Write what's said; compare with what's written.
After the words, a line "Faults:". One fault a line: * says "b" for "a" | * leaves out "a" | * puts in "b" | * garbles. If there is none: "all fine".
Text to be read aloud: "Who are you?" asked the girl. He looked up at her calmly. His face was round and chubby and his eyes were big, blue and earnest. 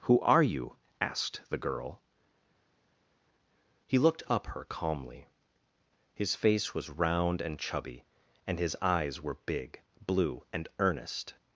"Who are you?" asked the girl. He looked up her calmly. His face was round and chubby and his eyes were big, blue and earnest.
Faults:
* leaves out "at"